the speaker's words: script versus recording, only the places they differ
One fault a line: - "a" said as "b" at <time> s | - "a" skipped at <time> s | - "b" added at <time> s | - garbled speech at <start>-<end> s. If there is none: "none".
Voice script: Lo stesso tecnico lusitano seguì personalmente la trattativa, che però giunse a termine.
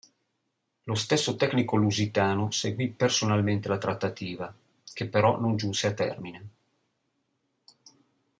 - "non" added at 5.4 s